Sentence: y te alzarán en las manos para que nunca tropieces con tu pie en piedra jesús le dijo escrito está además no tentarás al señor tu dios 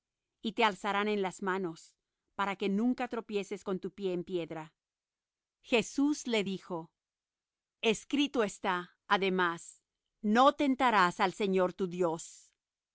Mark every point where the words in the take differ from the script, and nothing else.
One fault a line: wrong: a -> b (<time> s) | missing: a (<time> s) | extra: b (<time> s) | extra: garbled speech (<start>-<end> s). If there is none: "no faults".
no faults